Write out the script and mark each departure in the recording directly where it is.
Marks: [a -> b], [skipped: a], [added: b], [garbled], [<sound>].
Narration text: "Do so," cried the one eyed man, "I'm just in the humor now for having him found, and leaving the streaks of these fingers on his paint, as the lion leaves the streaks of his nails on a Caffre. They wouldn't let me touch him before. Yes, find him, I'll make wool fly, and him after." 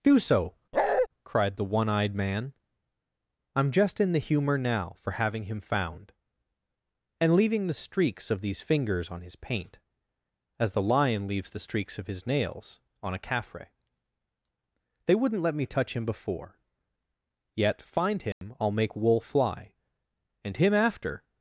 "Do so," [bark] cried the one eyed man, "I'm just in the humor now for having him found, and leaving the streaks of these fingers on his paint, as the lion leaves the streaks of his nails on a Caffre. They wouldn't let me touch him before. [Yes, -> Yet] find him, [dropout] I'll make wool fly, and him after."